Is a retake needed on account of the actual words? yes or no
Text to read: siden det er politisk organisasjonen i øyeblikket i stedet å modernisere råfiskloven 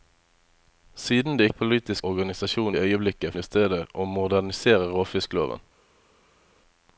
no